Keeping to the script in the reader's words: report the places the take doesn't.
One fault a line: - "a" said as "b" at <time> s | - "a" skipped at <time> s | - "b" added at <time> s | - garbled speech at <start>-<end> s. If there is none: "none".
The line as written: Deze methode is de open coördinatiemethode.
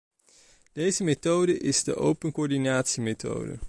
none